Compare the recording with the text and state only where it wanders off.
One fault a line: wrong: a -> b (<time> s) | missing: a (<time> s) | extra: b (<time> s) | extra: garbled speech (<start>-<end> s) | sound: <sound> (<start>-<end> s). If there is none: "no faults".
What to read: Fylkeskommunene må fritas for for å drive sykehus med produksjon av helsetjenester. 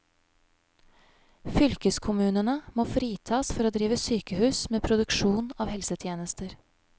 missing: for (3.7 s)